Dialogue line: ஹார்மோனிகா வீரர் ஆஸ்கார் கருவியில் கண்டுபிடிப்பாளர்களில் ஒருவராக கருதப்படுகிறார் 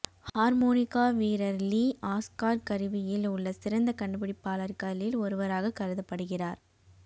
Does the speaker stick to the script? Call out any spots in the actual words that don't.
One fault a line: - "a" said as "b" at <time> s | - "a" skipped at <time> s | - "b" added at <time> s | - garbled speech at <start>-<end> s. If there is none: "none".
- "லீ" added at 1.6 s
- "உள்ள சிறந்த" added at 3.3 s